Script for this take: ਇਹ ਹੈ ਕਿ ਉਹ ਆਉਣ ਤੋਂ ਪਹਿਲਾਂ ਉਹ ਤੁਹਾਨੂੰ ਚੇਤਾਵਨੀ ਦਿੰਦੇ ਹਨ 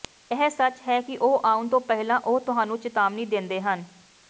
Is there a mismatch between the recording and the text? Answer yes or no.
yes